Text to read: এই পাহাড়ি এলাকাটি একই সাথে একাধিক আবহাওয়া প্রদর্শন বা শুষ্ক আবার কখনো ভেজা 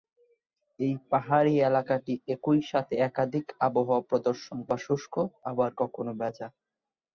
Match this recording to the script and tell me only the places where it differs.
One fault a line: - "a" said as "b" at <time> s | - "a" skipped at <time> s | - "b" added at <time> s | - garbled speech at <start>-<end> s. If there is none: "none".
none